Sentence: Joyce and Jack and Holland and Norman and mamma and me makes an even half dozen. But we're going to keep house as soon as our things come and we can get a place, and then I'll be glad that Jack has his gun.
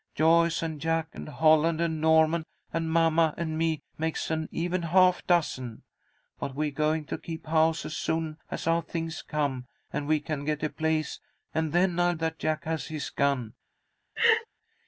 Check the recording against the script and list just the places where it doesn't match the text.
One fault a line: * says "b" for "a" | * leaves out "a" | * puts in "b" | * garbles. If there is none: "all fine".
* leaves out "be glad"